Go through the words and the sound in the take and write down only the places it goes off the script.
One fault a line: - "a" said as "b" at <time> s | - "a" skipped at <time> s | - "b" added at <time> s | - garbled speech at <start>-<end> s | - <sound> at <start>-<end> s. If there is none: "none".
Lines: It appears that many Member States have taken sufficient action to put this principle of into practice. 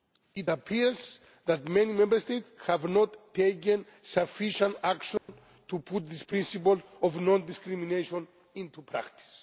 - "not" added at 2.8 s
- dropout at 5.2-5.3 s
- "non discrimination" added at 7.2 s